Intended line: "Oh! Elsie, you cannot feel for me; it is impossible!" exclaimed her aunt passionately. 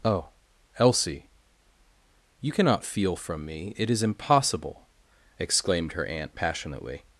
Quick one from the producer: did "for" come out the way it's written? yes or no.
no